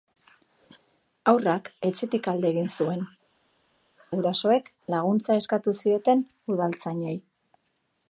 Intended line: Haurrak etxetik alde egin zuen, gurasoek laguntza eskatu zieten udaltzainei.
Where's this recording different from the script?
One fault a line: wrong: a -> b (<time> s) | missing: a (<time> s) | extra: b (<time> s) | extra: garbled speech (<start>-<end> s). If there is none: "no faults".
no faults